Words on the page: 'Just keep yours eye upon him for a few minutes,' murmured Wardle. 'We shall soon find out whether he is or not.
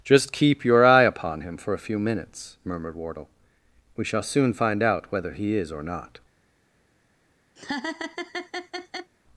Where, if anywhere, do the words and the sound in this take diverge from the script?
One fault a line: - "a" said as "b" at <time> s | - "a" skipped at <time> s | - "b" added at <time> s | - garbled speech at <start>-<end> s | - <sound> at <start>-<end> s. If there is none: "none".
- "yours" said as "your" at 0.7 s
- laugh at 7.6-9.1 s